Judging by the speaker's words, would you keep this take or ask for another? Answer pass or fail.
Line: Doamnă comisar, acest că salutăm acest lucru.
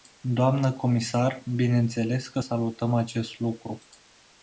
fail